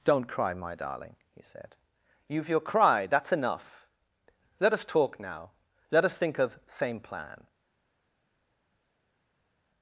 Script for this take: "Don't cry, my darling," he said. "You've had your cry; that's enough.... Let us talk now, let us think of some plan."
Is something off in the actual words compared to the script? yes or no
yes